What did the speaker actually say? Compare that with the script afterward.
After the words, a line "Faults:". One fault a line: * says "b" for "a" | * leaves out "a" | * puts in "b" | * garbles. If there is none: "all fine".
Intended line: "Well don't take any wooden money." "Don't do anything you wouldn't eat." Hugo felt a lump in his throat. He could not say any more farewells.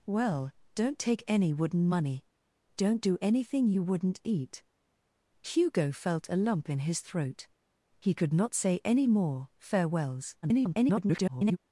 "Well don't take any wooden money." "Don't do anything you wouldn't eat." Hugo felt a lump in his throat. He could not say any more farewells. [garbled]
Faults:
* garbles